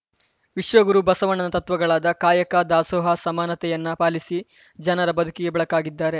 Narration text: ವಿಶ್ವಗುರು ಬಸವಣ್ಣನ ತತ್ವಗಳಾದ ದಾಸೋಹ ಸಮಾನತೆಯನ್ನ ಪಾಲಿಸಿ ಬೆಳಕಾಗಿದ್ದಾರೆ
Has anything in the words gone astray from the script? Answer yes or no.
yes